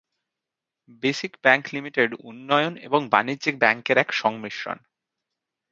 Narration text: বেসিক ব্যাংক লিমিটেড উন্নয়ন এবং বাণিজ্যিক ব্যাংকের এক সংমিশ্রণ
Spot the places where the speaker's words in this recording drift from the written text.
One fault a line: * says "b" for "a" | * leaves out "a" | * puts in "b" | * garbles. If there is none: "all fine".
all fine